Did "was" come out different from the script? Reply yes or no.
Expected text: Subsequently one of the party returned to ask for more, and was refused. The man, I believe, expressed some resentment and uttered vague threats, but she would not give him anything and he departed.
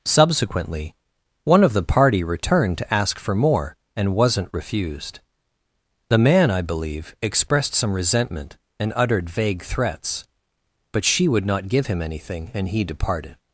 yes